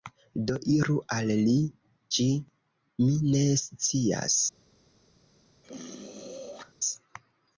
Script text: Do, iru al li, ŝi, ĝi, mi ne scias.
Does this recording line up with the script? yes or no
no